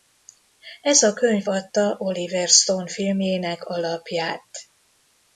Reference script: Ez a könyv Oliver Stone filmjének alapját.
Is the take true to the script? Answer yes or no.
no